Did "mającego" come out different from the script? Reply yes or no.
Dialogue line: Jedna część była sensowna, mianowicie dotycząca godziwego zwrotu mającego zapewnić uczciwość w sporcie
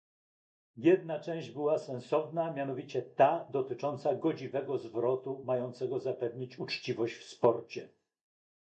no